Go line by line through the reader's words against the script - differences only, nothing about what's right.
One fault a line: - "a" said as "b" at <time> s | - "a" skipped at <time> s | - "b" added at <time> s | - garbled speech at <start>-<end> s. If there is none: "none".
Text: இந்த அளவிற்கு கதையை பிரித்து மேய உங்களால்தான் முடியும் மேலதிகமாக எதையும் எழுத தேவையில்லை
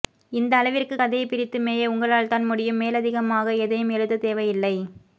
none